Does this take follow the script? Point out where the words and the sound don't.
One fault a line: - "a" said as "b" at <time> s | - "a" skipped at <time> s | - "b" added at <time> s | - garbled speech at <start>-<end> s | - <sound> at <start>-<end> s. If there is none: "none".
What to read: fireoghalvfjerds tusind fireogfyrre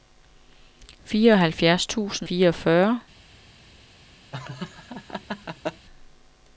- laugh at 4.3-5.9 s